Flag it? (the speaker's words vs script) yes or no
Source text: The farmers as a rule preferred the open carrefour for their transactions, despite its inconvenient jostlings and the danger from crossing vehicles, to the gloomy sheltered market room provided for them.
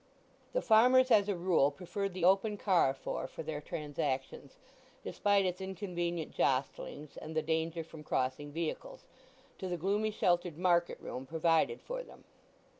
no